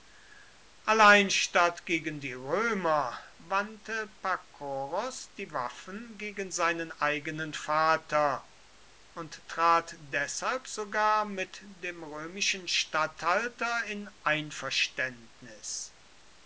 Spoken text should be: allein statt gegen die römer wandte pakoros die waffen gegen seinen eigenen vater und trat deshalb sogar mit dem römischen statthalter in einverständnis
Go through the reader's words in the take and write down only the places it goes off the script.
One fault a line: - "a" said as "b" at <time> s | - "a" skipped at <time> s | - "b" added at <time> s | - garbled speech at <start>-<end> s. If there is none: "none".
none